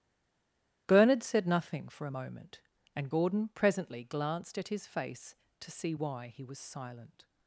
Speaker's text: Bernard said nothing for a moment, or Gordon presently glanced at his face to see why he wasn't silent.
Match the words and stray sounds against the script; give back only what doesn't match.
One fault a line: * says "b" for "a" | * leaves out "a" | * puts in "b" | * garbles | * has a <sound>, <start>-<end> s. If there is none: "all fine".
* says "and" for "or"
* says "was" for "wasn't"